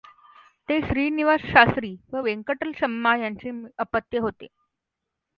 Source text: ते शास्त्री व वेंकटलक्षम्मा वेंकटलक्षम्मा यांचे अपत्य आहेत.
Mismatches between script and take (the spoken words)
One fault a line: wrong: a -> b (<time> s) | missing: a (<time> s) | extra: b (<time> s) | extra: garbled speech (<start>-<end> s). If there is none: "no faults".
extra: श्रीनिवास (0.8 s)
missing: वेंकटलक्षम्मा (3.2 s)
wrong: आहेत -> होते (4.2 s)